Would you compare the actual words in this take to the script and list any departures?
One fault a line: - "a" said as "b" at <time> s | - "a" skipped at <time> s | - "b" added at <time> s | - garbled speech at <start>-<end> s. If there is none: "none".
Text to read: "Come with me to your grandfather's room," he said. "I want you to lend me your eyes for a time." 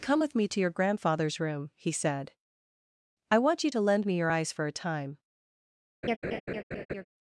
none